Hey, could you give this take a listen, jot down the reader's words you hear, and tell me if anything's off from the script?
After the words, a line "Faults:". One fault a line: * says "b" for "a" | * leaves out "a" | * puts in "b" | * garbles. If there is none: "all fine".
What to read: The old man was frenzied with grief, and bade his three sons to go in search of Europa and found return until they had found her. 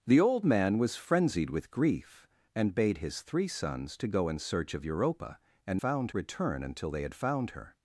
The old man was frenzied with grief, and bade his three sons to go in search of Europa and found return until they had found her.
Faults:
all fine